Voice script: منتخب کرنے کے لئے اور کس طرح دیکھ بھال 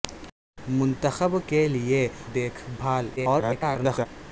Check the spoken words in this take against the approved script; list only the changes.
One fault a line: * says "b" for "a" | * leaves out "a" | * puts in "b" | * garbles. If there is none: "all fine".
* leaves out "کرنے"
* leaves out "اور کس طرح"
* garbles